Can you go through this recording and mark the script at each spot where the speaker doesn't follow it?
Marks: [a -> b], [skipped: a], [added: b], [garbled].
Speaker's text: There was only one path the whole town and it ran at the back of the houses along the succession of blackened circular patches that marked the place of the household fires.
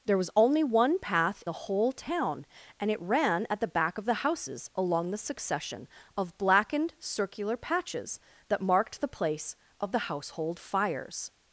There was only one path the whole town and it ran at the back of the houses along the succession of blackened circular patches that marked the place of the household fires.